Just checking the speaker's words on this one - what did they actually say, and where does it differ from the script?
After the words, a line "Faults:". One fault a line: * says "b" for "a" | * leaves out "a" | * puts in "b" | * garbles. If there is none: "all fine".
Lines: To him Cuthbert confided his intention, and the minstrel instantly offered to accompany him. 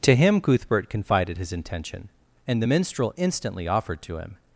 To him Cuthbert confided his intention, and the minstrel instantly offered to him.
Faults:
* leaves out "accompany"